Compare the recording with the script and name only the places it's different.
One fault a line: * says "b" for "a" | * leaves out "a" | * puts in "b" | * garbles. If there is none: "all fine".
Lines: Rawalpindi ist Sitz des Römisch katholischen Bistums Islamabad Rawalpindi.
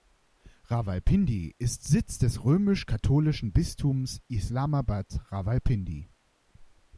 all fine